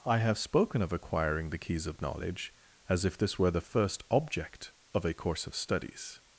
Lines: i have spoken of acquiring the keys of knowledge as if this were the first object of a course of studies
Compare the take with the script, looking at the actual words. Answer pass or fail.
pass